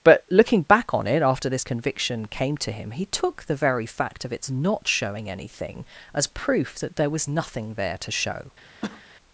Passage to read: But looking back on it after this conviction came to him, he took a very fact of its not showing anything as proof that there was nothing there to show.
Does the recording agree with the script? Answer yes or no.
no